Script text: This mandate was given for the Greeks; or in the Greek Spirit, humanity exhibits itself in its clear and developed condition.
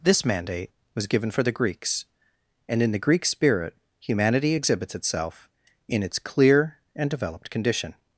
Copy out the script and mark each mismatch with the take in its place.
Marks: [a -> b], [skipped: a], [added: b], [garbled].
This mandate was given for the Greeks; [or -> and] in the Greek Spirit, humanity exhibits itself in its clear and developed condition.